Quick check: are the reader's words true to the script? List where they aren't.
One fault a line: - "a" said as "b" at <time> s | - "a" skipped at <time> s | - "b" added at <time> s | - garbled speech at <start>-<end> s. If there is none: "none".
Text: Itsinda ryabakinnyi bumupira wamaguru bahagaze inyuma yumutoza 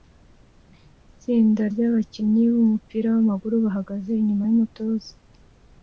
none